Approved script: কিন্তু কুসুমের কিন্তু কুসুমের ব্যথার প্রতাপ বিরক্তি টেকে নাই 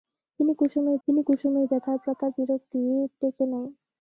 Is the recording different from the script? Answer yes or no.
no